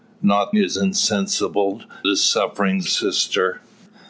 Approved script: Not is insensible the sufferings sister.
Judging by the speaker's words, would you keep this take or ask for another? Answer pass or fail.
pass